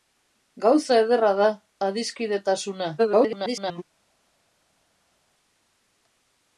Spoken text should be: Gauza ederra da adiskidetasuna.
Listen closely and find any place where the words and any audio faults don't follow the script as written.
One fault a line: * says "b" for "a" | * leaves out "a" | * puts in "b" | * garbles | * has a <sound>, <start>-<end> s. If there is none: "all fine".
* garbles